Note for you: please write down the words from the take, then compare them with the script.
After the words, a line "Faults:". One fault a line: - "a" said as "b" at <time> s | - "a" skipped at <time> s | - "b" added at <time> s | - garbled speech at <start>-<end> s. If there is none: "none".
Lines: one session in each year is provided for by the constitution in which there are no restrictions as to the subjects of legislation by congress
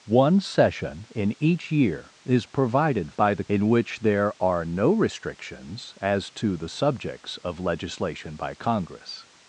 one session in each year is provided by the in which there are no restrictions as to the subjects of legislation by congress
Faults:
- "for" skipped at 3.1 s
- "constitution" skipped at 3.4 s